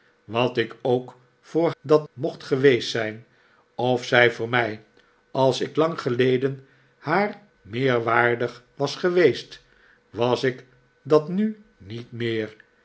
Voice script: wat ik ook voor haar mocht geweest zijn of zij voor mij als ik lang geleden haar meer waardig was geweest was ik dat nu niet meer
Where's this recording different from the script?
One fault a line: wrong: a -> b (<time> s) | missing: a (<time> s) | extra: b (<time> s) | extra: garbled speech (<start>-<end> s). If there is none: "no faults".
wrong: haar -> dat (1.8 s)